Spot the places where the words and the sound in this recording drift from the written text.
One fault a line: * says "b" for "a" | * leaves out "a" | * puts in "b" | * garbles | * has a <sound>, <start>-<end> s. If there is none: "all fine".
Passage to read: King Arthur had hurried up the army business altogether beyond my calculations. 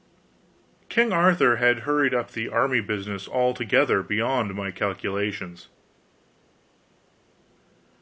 all fine